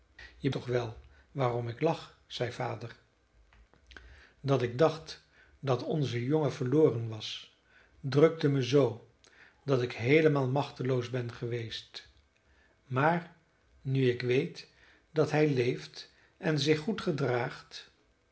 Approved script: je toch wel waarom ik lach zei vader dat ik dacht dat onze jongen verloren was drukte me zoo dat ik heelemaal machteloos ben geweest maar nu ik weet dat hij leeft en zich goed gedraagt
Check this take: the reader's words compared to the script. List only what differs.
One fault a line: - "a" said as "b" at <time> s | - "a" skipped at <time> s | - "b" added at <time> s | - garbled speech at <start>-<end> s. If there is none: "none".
none